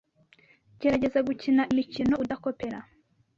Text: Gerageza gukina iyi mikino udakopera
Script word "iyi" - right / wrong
wrong